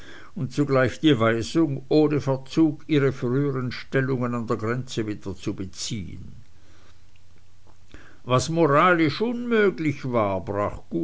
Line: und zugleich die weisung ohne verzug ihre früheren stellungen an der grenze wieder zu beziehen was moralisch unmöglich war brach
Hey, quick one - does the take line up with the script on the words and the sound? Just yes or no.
yes